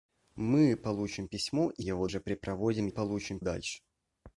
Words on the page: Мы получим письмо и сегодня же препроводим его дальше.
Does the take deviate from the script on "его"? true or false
true